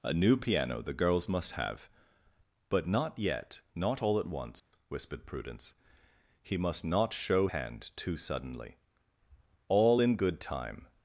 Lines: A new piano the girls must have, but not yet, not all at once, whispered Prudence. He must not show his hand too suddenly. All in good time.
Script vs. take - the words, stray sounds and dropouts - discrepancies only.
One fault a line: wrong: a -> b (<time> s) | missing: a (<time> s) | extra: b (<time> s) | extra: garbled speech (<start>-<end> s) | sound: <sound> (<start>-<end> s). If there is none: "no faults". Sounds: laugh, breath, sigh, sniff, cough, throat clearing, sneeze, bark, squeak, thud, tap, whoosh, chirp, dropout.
sound: dropout (4.6-4.7 s)
missing: his (7.5 s)